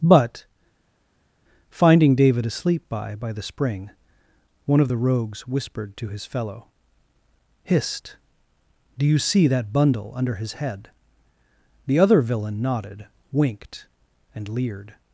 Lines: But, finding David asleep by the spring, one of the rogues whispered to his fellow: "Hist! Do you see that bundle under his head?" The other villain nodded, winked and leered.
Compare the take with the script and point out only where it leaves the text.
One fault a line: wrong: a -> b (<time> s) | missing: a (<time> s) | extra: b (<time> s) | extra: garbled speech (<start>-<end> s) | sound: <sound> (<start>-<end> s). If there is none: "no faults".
extra: by (3.1 s)